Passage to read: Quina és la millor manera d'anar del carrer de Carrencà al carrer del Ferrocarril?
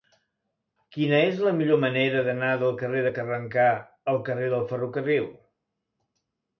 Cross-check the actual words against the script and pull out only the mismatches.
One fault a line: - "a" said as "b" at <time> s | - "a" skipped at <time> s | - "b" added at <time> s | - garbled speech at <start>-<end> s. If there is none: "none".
none